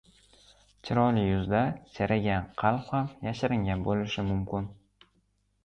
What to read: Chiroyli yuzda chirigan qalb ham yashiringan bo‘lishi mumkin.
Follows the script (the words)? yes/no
yes